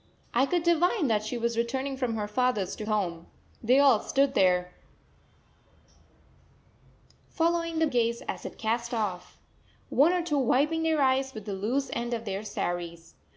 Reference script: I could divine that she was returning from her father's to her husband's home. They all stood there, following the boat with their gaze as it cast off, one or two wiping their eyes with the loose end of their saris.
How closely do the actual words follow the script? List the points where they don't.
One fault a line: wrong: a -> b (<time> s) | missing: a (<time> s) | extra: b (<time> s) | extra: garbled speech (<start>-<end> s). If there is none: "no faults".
missing: her husband's (2.9 s)
missing: boat with their (7.9 s)